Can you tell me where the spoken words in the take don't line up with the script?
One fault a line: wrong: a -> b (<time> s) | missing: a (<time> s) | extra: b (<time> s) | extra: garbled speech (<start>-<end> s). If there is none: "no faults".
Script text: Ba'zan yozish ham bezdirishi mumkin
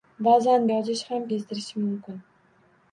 no faults